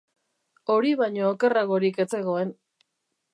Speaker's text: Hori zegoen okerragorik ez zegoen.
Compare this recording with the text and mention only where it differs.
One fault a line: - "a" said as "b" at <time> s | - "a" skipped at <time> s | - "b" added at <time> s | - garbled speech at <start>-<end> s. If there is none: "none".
- "zegoen" said as "baino" at 1.0 s